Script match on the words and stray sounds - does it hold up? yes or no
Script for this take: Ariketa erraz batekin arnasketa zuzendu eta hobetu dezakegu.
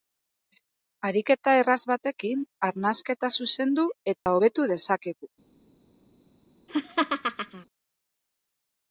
no